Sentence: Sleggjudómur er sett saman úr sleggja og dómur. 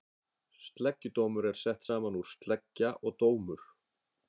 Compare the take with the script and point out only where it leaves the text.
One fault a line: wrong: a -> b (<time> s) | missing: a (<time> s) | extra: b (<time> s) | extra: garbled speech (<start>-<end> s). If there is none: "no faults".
no faults